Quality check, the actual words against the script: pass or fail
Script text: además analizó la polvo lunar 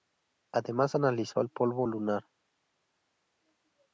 fail